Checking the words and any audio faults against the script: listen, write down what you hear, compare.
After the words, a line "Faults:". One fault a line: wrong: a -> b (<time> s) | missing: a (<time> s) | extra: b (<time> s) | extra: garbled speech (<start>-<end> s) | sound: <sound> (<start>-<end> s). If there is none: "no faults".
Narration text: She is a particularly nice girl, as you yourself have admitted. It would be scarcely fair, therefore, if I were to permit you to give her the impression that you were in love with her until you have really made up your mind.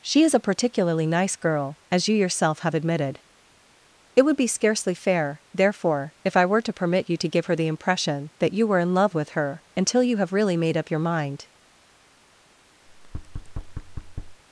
She is a particularly nice girl, as you yourself have admitted. It would be scarcely fair, therefore, if I were to permit you to give her the impression that you were in love with her until you have really made up your mind.
Faults:
sound: thud (12.9-14.4 s)